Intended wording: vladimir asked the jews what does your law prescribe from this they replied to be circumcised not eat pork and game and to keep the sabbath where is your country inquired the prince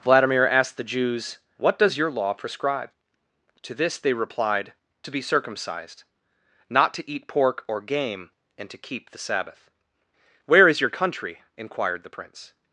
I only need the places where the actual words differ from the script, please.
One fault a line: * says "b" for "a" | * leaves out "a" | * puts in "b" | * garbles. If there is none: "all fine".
* says "to" for "from"
* puts in "to"
* says "or" for "and"